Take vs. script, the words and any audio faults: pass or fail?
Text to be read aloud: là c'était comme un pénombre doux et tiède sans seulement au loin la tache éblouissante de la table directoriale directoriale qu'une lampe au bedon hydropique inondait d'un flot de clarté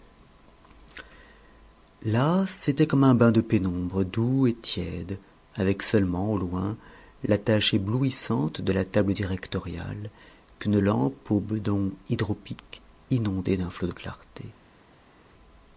fail